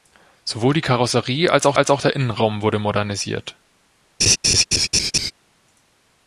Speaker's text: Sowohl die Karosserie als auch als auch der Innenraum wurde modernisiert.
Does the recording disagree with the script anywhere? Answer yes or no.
no